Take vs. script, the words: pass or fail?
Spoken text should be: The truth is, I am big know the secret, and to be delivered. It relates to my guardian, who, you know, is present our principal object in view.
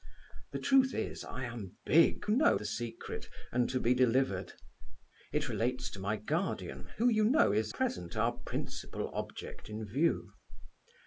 pass